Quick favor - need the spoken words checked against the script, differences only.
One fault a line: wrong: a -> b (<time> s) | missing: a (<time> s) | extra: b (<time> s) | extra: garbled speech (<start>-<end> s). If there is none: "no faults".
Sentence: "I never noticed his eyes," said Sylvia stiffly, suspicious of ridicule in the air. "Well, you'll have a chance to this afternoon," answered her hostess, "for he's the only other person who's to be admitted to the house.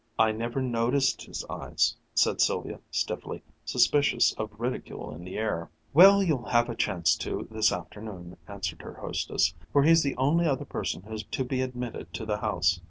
no faults